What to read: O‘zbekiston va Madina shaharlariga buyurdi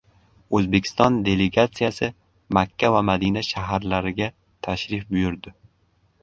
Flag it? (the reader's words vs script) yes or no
yes